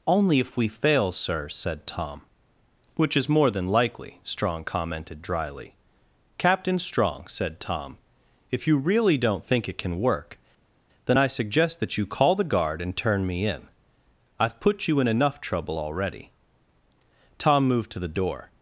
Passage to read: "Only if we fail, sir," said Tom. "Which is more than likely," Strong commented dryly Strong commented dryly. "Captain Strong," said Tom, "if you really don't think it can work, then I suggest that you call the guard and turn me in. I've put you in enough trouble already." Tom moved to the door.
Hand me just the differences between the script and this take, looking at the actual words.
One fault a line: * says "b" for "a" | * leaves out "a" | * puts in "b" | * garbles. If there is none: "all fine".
* leaves out "Strong commented dryly"